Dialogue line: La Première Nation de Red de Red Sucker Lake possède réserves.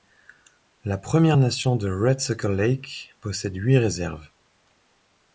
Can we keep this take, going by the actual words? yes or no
no